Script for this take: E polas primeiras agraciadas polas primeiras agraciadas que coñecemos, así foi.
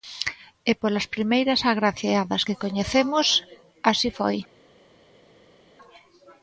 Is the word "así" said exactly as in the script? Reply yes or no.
yes